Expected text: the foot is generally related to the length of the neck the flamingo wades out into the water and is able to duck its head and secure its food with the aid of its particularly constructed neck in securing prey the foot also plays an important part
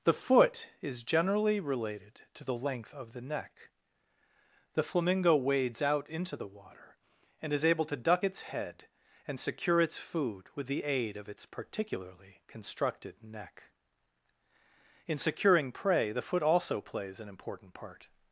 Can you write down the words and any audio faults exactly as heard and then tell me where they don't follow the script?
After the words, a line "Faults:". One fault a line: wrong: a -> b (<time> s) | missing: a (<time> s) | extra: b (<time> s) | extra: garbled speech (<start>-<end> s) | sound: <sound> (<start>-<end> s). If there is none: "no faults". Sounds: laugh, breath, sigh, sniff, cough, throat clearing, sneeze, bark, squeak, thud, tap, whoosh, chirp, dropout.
the foot is generally related to the length of the neck the flamingo wades out into the water and is able to duck its head and secure its food with the aid of its particularly constructed neck in securing prey the foot also plays an important part
Faults:
no faults